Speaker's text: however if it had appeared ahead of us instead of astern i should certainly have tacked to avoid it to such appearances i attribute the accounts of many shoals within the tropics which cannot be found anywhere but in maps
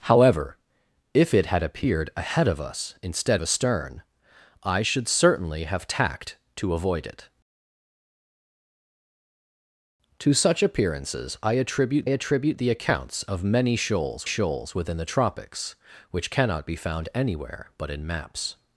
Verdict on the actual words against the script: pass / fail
fail